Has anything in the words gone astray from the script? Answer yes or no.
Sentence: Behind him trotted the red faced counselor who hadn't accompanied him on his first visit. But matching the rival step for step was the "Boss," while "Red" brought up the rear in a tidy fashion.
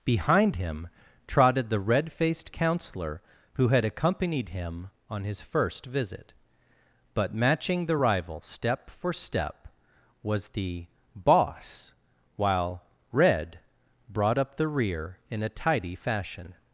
yes